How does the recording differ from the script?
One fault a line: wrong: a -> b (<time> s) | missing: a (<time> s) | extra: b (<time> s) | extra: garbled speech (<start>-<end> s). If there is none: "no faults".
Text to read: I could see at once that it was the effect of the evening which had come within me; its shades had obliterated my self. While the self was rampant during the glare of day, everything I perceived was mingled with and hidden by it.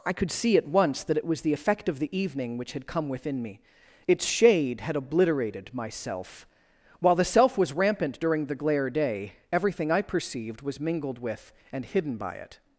wrong: shades -> shade (4.2 s)
missing: of (8.9 s)